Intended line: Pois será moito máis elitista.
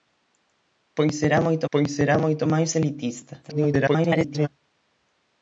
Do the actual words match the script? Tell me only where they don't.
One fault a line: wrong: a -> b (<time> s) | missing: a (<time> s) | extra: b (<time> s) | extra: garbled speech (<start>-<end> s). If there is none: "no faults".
extra: pois será moito (1.7 s)
extra: garbled speech (3.4-4.5 s)